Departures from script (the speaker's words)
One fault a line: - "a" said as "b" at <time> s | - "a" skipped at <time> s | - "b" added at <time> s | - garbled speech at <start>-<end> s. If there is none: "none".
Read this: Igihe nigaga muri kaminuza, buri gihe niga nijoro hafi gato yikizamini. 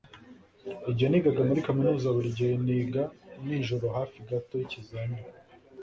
none